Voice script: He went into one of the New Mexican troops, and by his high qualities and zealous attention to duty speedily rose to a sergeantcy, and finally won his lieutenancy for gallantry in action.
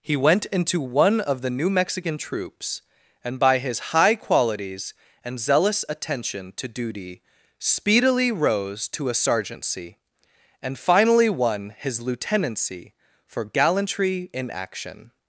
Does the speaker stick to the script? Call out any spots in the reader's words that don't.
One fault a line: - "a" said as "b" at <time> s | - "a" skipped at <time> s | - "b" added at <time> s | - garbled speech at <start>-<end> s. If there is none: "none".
none